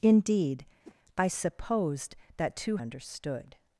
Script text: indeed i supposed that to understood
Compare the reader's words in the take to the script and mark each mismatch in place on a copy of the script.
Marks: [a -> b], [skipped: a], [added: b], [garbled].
indeed i supposed that to understood